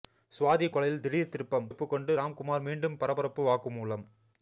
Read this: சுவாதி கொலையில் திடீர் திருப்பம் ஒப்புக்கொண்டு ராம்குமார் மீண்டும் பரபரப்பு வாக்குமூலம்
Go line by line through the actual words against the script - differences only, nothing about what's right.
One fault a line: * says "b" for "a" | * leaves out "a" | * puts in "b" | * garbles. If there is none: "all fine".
all fine